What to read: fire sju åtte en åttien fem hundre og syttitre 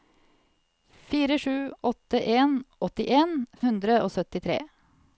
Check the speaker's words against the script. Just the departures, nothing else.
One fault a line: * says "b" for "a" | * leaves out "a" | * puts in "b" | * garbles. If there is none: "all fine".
* leaves out "fem"